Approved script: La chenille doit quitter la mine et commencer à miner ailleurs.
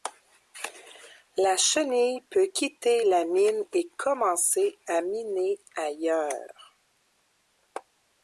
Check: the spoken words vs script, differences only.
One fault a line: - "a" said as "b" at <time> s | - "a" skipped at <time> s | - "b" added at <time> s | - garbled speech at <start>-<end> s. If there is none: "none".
- "doit" said as "peut" at 2.2 s